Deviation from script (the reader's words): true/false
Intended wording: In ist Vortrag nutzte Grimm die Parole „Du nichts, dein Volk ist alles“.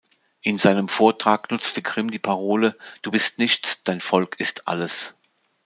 true